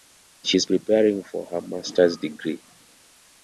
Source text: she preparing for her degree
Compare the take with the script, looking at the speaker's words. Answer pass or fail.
fail